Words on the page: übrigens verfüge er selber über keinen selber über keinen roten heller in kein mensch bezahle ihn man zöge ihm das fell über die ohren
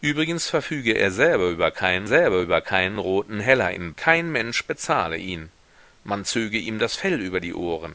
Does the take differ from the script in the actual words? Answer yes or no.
no